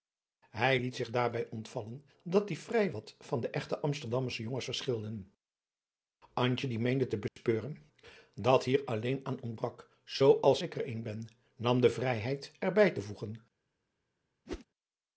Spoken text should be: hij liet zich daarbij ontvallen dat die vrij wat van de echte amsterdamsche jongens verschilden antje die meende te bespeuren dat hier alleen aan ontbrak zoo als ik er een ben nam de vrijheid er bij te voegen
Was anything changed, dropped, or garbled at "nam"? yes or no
no